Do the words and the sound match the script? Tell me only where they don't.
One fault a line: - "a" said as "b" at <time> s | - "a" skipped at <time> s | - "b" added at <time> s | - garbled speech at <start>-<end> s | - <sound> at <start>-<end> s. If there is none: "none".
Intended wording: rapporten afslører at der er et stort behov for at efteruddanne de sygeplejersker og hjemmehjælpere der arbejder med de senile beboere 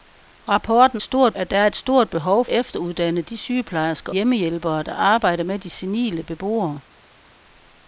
- "afslører" said as "stort" at 1.0 s
- "for at" skipped at 2.5 s
- "og" skipped at 4.1 s